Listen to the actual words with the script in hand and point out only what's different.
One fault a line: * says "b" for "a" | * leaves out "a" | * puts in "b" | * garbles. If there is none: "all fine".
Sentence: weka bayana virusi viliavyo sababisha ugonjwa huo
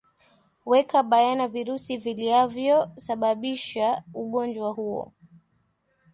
all fine